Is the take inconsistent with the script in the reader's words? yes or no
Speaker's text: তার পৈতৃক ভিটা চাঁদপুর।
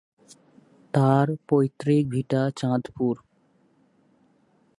no